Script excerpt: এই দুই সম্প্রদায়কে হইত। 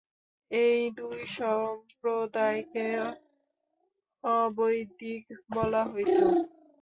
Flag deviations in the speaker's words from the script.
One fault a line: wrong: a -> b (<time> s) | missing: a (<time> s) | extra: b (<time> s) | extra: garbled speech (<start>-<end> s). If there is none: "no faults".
extra: অবৈদিক বলা (4.2 s)